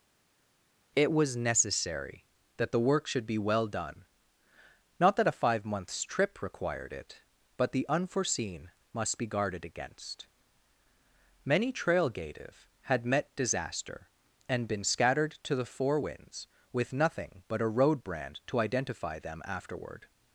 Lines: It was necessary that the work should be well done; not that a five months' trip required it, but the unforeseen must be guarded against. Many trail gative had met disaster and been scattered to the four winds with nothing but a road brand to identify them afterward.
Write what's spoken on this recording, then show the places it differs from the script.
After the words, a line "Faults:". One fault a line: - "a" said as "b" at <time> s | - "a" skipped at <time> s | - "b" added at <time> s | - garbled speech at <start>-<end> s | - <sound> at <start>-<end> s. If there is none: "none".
It was necessary that the work should be well done; not that a five months' trip required it, but the unforeseen must be guarded against. Many trail gative had met disaster and been scattered to the four winds with nothing but a road brand to identify them afterward.
Faults:
none